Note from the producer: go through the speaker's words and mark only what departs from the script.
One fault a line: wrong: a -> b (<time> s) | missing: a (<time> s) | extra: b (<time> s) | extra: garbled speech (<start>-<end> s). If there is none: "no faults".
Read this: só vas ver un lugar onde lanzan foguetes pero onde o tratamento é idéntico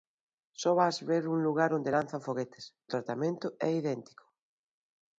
missing: pero onde (2.6 s)